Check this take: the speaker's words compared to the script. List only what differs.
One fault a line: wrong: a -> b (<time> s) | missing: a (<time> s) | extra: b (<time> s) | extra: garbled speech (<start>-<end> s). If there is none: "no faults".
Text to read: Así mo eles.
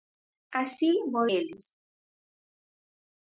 no faults